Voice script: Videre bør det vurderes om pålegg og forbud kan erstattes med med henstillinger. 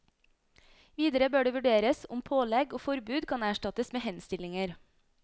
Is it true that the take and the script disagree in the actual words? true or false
true